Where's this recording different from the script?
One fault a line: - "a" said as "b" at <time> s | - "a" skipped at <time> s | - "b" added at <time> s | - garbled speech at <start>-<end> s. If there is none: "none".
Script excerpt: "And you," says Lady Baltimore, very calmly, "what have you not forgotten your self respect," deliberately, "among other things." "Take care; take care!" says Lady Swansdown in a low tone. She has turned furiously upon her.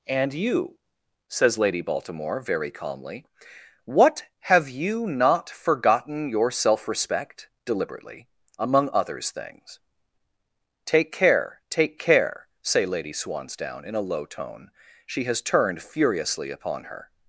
- "other" said as "others" at 8.9 s
- "says" said as "say" at 12.6 s